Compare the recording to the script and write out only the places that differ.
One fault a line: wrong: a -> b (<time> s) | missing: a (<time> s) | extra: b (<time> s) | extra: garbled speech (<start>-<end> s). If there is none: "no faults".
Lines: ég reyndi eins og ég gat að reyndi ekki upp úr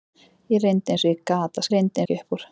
no faults